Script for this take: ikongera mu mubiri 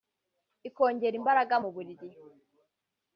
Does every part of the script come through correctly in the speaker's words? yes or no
no